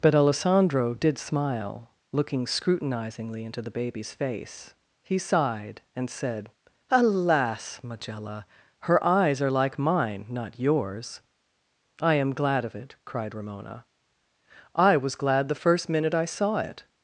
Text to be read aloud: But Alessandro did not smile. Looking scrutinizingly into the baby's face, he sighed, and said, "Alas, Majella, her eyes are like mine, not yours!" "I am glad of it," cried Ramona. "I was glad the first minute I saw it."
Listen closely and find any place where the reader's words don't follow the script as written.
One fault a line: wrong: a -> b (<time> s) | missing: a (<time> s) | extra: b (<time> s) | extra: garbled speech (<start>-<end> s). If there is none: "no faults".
missing: not (1.2 s)